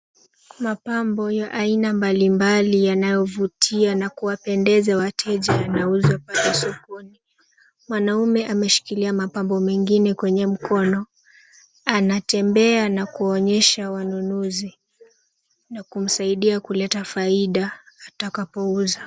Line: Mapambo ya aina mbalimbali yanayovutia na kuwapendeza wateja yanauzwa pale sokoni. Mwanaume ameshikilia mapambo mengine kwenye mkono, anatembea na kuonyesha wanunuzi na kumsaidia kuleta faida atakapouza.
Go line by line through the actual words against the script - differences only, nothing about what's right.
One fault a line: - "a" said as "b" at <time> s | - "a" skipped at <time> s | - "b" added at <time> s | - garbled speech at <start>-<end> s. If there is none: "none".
none